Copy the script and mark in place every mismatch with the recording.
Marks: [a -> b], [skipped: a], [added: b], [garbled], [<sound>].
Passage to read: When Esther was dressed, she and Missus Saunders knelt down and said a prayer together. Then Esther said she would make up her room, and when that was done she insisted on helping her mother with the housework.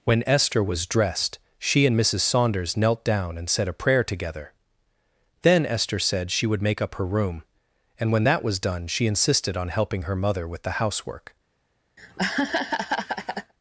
When Esther was dressed, she and Missus Saunders knelt down and said a prayer together. Then Esther said she would make up her room, and when that was done she insisted on helping her mother with the housework. [laugh]